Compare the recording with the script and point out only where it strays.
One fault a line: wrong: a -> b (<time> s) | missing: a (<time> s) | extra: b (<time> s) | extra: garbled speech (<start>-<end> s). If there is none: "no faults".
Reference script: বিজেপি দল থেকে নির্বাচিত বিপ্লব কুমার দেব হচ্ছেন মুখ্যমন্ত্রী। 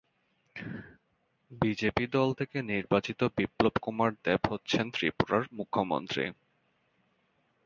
extra: ত্রিপুরার (4.9 s)